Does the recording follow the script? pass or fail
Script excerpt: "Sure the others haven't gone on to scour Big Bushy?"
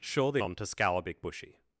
fail